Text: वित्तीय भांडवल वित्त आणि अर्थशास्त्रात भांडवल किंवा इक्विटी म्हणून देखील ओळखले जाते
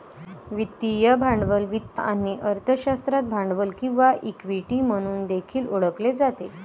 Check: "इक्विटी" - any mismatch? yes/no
no